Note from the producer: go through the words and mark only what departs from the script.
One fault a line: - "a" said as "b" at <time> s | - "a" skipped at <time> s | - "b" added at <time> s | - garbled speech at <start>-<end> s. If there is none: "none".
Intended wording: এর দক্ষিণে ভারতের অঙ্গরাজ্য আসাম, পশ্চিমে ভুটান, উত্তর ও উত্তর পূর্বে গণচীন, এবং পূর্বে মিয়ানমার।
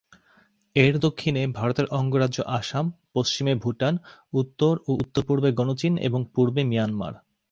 none